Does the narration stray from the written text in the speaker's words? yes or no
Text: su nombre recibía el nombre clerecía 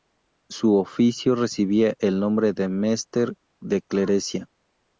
yes